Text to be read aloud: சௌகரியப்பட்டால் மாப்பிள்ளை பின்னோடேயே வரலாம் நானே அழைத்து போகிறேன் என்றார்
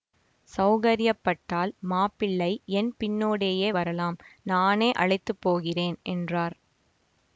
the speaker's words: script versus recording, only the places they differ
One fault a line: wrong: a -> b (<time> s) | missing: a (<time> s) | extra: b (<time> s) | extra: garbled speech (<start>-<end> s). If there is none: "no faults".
extra: என் (2.7 s)